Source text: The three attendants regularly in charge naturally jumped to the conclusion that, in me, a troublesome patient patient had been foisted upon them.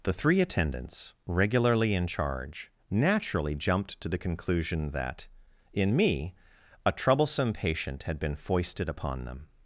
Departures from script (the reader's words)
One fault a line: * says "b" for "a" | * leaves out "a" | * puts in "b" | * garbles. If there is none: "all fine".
* leaves out "patient"